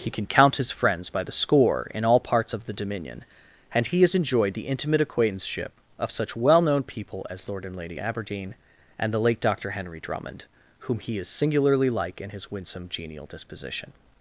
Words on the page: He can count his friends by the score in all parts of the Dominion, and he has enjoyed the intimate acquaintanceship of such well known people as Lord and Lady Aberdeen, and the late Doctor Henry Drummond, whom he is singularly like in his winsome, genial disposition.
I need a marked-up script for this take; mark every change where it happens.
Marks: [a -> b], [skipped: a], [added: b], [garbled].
He can count his friends by the score in all parts of the Dominion, and he has enjoyed the intimate acquaintanceship of such well known people as Lord and Lady Aberdeen, and the late Doctor Henry Drummond, whom he is singularly like in his winsome, genial disposition.